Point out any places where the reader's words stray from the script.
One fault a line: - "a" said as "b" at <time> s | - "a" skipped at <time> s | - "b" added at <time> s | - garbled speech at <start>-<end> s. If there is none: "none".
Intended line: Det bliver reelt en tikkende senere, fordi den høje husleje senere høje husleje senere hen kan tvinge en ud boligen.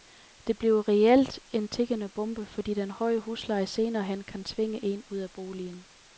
- "senere" said as "bombe" at 2.1 s
- "høje husleje senere" skipped at 4.0 s
- "af" added at 5.2 s